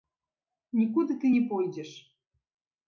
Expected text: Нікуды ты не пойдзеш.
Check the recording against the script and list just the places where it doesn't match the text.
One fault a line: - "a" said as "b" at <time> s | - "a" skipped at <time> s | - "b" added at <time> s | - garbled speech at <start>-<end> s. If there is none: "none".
none